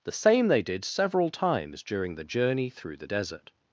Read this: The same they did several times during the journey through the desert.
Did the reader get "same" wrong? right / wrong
right